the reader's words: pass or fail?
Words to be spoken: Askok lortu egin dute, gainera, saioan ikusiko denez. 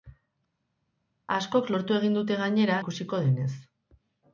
fail